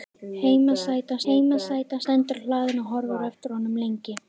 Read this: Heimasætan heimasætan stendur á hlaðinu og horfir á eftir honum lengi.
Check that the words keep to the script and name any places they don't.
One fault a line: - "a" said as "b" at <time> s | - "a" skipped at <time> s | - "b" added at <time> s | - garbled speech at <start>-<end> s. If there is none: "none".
none